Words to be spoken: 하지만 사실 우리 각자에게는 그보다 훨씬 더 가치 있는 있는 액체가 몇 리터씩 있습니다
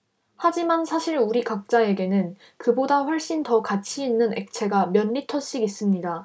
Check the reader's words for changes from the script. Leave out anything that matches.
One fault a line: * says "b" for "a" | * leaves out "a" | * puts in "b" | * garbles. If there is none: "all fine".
* leaves out "있는"